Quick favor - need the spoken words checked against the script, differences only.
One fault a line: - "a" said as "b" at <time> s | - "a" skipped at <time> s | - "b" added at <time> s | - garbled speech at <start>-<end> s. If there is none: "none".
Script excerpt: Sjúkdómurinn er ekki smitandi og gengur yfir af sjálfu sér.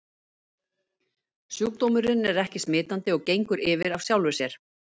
none